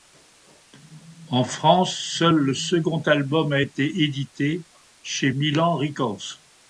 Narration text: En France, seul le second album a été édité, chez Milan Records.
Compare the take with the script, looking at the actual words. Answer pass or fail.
pass